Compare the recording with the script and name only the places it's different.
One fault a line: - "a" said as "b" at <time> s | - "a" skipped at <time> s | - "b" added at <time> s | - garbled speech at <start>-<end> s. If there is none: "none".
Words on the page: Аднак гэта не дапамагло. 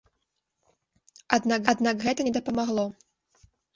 - "аднак" added at 1.7 s